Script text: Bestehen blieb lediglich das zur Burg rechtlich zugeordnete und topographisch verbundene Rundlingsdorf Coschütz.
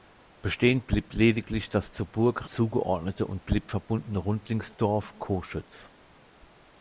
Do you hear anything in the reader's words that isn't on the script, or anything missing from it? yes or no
yes